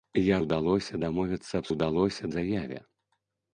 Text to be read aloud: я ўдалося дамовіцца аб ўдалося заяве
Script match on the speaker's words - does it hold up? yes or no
yes